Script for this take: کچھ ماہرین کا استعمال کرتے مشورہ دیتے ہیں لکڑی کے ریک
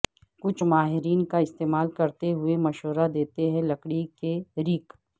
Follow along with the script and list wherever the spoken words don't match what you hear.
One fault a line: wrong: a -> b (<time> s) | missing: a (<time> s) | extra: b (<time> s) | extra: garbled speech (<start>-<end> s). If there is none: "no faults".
extra: ہوئے (2.3 s)